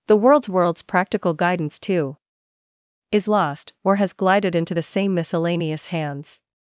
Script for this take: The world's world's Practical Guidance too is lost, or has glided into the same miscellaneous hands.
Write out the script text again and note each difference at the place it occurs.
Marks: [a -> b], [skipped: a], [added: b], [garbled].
The world's world's Practical Guidance too is lost, or has glided into the same miscellaneous hands.